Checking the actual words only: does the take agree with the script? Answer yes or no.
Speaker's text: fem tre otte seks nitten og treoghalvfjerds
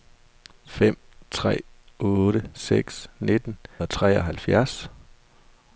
yes